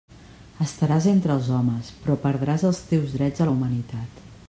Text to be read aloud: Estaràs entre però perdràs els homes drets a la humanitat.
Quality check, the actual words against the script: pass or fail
fail